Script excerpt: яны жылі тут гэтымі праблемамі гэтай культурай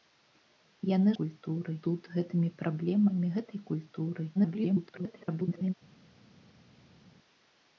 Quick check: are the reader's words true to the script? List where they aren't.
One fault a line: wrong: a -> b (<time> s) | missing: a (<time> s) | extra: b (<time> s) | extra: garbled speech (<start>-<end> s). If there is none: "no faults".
wrong: жылі -> культурай (1.2 s)
extra: garbled speech (4.3-5.7 s)